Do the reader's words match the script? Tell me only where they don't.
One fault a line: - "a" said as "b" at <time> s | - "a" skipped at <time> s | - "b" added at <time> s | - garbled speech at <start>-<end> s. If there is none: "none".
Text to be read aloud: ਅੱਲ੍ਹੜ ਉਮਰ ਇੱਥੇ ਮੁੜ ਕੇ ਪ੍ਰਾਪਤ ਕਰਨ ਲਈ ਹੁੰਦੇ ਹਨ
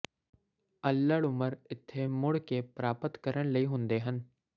none